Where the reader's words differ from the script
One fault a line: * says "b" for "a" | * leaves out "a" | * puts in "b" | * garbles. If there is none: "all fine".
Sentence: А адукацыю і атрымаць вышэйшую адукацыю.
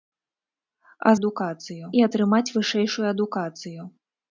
all fine